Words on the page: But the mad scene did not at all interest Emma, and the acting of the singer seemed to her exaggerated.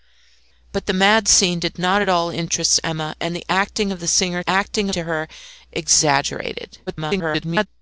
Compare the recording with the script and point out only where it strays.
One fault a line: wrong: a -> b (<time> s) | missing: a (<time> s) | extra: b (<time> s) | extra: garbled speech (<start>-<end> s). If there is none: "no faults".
wrong: seemed -> acting (4.5 s)
extra: garbled speech (6.9-7.7 s)